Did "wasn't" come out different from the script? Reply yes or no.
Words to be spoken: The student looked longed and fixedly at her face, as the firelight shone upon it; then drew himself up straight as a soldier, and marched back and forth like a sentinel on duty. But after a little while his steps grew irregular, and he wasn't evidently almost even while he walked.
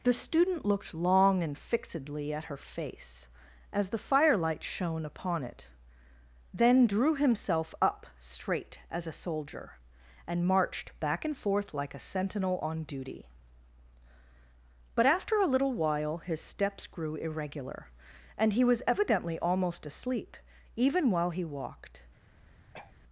yes